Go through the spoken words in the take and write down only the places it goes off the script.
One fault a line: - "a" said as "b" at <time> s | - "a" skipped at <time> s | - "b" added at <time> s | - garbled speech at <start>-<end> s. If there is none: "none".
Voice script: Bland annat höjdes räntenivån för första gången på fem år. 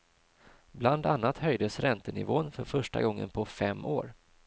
none